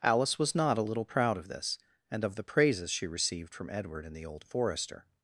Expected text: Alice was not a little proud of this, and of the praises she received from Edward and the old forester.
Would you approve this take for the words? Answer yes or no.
yes